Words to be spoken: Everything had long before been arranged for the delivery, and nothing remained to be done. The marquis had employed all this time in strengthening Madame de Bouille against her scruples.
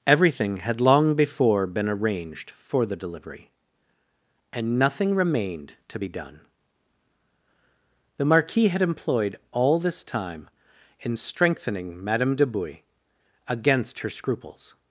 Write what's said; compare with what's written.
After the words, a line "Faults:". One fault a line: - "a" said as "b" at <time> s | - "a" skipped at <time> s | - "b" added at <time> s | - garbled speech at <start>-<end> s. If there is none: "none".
Everything had long before been arranged for the delivery, and nothing remained to be done. The marquis had employed all this time in strengthening Madame de Bouille against her scruples.
Faults:
none